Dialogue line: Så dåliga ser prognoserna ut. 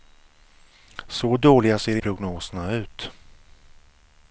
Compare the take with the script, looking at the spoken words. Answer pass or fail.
pass